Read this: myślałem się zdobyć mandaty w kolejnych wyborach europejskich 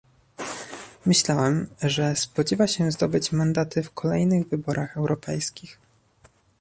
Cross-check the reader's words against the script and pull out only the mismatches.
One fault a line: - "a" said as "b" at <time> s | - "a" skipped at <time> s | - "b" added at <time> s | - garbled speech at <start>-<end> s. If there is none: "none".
- "że spodziewa" added at 1.8 s